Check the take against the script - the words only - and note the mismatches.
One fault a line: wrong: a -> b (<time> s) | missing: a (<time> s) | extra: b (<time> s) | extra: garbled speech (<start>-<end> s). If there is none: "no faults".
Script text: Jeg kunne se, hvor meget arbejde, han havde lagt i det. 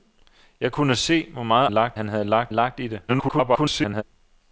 wrong: arbejde -> lagt (1.7 s)
extra: lagt (2.5 s)
extra: garbled speech (3.1-4.0 s)